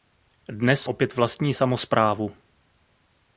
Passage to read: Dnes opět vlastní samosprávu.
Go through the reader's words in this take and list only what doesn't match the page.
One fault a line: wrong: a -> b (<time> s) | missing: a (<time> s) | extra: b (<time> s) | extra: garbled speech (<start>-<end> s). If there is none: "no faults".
no faults